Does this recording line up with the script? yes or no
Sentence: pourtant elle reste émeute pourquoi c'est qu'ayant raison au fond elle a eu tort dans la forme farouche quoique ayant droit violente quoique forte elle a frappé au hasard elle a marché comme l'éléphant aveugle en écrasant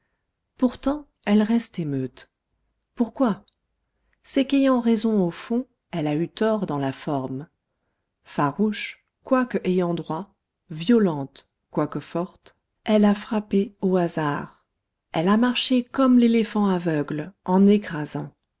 yes